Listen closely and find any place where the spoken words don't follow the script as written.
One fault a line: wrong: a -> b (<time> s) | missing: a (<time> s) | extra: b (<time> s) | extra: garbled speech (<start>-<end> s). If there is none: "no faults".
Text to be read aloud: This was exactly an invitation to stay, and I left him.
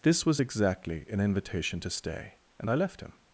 no faults